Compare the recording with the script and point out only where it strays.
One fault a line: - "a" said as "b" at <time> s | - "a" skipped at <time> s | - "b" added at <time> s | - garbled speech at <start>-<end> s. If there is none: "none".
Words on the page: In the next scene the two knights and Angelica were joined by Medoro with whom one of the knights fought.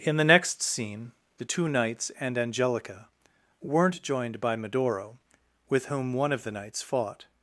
- "were" said as "weren't" at 3.6 s